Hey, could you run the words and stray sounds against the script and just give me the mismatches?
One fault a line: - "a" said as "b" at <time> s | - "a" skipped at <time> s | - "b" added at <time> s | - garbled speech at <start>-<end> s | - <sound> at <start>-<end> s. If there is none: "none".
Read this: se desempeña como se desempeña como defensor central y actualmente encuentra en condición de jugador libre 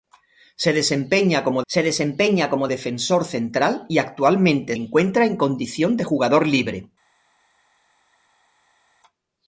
none